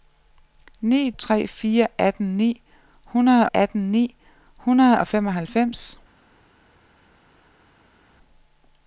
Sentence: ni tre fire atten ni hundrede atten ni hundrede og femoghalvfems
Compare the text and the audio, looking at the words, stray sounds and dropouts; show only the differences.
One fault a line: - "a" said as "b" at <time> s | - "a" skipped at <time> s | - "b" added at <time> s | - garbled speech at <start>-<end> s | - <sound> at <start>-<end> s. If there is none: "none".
none